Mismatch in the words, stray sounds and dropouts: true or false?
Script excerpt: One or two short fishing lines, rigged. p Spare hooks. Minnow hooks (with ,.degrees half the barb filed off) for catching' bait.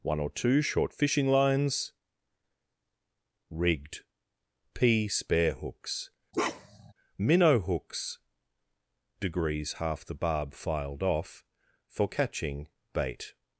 true